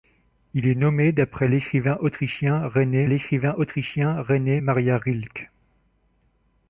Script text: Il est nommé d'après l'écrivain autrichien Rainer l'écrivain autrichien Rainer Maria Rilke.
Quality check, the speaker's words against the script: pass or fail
pass